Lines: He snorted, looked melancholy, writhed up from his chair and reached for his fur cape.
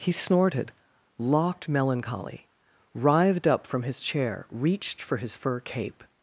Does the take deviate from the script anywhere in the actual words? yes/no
yes